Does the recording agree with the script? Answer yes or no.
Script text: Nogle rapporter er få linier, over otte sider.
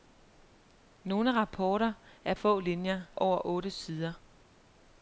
yes